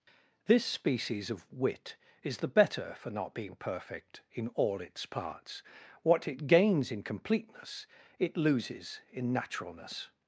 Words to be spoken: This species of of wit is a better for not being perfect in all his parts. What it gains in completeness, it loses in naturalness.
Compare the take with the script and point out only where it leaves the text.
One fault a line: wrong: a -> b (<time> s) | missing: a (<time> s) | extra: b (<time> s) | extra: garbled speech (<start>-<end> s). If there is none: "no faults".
missing: of (1.5 s)
wrong: a -> the (2.4 s)
wrong: his -> its (4.8 s)